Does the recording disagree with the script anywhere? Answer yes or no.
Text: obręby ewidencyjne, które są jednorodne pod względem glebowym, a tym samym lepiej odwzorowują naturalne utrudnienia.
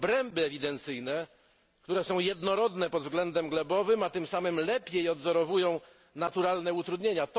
no